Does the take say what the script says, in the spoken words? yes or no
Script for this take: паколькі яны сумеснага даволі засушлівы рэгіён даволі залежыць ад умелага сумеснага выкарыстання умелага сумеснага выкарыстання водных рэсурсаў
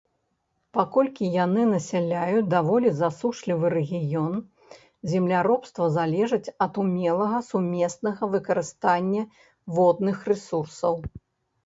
no